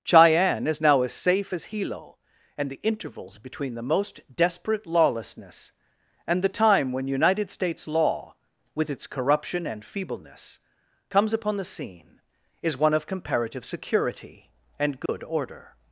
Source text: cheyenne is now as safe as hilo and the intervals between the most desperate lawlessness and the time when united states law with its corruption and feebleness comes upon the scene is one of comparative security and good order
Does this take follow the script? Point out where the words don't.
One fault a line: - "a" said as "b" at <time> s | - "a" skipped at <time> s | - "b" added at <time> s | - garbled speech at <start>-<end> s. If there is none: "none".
none